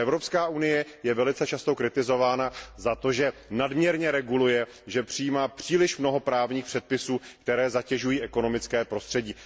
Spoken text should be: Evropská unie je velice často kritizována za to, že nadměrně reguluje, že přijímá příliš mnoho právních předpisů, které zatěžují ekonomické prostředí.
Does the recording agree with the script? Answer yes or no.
yes